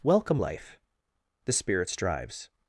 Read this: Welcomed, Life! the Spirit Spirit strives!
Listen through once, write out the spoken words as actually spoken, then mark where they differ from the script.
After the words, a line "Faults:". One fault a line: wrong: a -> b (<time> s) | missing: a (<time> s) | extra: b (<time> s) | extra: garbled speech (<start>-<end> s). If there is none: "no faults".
Welcome, Life! the Spirit strives!
Faults:
wrong: Welcomed -> Welcome (0.0 s)
missing: Spirit (1.9 s)